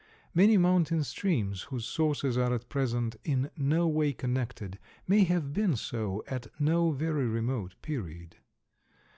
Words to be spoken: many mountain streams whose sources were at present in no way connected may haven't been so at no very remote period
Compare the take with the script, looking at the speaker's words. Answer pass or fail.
fail